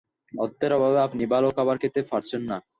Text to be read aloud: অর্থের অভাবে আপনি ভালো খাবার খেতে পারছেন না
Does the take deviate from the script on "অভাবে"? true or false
false